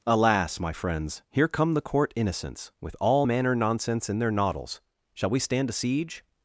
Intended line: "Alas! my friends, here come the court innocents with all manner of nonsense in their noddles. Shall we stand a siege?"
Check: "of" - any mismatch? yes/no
yes